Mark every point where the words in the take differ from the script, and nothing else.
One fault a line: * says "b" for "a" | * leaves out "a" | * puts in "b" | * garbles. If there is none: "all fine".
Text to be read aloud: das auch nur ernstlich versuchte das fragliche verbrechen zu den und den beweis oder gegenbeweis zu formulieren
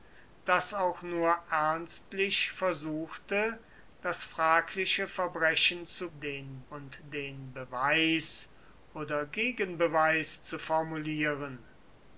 all fine